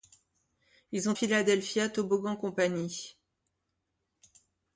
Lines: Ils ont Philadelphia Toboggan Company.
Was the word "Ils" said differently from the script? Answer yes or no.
no